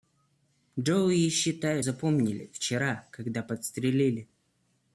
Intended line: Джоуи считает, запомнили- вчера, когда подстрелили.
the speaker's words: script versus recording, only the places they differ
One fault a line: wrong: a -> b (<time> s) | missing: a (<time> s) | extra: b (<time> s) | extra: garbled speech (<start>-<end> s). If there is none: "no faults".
no faults